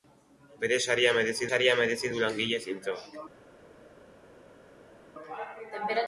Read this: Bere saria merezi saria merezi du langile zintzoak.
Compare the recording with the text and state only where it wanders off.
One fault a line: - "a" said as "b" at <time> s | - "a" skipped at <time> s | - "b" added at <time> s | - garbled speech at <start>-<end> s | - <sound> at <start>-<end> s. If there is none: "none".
none